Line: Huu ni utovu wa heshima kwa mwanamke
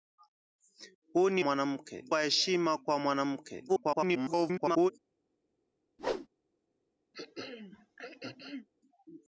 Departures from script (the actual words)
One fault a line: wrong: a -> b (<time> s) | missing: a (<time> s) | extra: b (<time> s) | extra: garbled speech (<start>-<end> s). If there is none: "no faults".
wrong: utovu -> mwanamke (1.4 s)
extra: garbled speech (3.7-4.9 s)